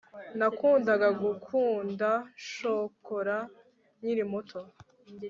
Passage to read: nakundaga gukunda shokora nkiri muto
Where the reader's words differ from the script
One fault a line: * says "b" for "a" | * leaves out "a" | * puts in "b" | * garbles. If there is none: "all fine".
all fine